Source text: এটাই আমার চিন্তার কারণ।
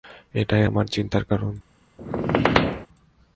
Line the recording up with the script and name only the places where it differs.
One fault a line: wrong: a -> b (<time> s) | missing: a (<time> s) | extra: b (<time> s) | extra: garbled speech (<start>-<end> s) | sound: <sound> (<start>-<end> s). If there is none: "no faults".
sound: squeak (2.0-2.9 s)